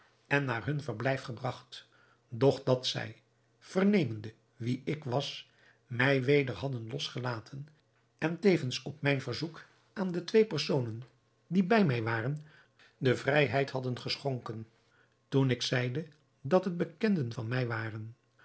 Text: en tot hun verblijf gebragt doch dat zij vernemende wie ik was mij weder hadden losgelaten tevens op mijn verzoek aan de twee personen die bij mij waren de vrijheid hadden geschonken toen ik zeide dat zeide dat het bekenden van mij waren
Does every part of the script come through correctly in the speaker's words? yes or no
no